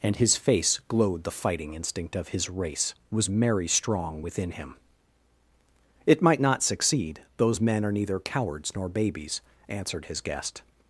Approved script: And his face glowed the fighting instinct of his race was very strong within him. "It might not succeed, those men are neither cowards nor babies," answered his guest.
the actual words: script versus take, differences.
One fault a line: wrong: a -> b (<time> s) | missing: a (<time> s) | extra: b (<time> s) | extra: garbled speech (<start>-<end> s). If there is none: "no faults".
wrong: very -> merry (3.3 s)